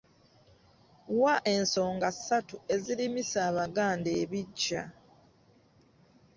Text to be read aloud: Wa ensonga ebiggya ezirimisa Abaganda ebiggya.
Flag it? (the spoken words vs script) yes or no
yes